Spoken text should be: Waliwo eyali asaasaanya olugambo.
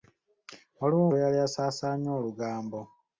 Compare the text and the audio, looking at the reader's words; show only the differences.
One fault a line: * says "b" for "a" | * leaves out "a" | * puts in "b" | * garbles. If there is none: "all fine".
all fine